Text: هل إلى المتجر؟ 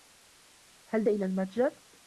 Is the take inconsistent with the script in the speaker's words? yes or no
no